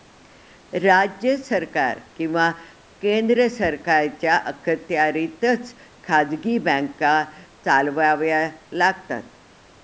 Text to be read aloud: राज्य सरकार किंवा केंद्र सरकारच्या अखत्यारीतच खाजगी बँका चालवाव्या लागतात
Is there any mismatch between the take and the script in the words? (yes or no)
no